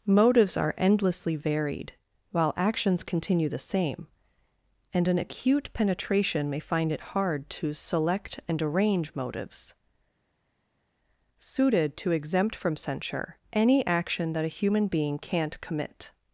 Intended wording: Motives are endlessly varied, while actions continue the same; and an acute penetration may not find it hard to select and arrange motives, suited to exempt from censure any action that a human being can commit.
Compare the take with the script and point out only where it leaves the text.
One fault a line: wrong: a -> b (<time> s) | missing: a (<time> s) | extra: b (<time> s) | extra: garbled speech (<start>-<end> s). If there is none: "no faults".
missing: not (6.6 s)
wrong: can -> can't (15.2 s)